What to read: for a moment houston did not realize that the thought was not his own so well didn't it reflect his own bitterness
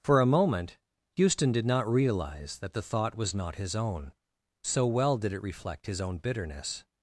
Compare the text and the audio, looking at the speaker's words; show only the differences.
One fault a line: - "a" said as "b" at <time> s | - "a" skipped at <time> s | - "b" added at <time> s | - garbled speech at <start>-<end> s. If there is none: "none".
- "didn't" said as "did" at 5.2 s